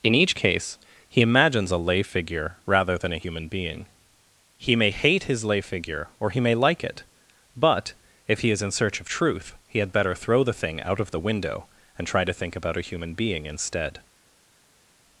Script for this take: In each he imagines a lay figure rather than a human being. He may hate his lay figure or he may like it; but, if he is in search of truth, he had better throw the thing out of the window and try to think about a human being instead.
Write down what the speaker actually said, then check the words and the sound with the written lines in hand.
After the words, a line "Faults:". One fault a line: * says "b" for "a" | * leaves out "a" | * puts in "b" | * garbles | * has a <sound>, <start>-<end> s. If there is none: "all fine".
In each case he imagines a lay figure rather than a human being. He may hate his lay figure or he may like it; but, if he is in search of truth, he had better throw the thing out of the window and try to think about a human being instead.
Faults:
* puts in "case"